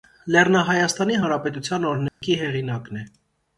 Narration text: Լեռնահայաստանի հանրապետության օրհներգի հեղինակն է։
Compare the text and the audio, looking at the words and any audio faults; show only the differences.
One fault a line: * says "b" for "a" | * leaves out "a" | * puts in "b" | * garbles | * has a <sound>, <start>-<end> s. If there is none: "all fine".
* has a dropout, 2.1-2.2 s